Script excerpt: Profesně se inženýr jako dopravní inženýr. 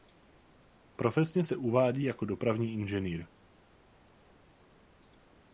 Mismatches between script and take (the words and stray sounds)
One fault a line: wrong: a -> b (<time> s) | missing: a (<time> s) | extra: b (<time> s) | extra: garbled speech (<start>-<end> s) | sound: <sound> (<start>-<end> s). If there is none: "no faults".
wrong: inženýr -> uvádí (1.6 s)